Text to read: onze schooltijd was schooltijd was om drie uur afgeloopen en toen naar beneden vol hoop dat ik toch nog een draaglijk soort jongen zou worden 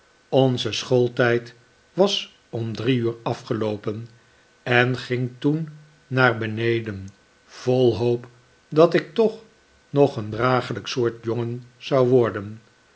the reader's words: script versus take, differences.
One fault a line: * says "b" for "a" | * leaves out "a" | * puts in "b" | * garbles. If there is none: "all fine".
* leaves out "schooltijd was"
* puts in "ging"